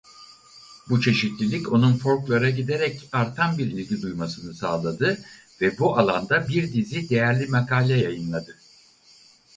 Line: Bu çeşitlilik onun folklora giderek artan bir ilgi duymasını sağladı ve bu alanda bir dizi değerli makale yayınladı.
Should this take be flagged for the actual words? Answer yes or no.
no